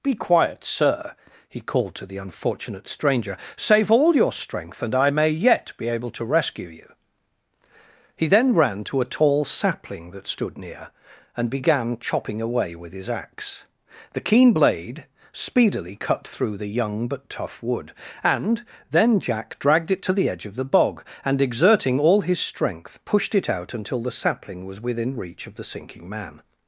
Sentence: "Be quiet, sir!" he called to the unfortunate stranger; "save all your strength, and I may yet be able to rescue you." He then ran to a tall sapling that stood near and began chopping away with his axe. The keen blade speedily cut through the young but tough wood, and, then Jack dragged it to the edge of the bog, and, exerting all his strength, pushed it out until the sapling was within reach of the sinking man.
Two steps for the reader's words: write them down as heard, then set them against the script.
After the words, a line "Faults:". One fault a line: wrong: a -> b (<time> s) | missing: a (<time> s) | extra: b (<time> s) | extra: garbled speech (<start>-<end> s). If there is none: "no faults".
"Be quiet, sir!" he called to the unfortunate stranger; "save all your strength, and I may yet be able to rescue you." He then ran to a tall sapling that stood near and began chopping away with his axe. The keen blade speedily cut through the young but tough wood, and, then Jack dragged it to the edge of the bog, and, exerting all his strength, pushed it out until the sapling was within reach of the sinking man.
Faults:
no faults